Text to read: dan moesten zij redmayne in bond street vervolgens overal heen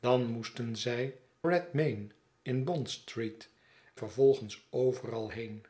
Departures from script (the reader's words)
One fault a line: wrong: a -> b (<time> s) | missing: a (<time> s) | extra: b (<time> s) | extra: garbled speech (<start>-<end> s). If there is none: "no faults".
no faults